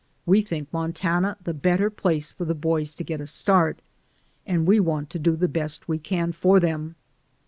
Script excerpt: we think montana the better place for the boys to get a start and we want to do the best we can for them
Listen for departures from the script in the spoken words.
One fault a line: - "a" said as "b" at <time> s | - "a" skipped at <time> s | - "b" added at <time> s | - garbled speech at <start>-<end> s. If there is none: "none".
none